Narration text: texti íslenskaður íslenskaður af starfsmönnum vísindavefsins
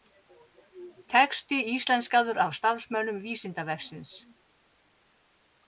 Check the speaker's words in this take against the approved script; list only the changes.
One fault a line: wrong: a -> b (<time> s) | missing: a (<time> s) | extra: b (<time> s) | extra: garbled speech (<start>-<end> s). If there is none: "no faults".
missing: íslenskaður (2.4 s)